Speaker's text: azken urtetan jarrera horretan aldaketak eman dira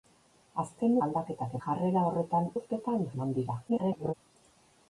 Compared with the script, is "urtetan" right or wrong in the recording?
wrong